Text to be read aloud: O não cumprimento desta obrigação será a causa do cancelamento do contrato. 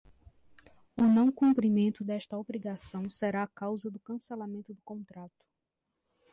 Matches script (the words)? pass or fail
pass